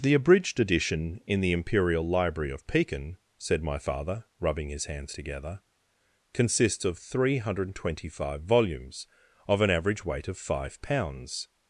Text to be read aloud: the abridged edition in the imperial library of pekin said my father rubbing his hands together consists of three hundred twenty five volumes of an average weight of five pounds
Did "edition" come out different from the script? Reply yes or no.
no